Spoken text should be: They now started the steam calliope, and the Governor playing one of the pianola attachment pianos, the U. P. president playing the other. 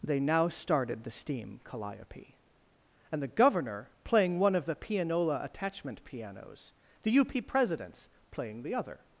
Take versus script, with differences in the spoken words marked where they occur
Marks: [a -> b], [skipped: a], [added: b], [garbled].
They now started the steam calliope, and the Governor playing one of the pianola attachment pianos, the U. P. [president -> presidents] playing the other.